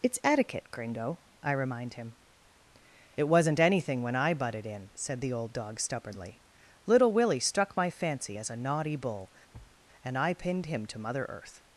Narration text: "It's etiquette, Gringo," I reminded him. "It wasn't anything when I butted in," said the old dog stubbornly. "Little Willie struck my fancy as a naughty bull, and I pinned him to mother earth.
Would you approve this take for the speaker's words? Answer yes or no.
no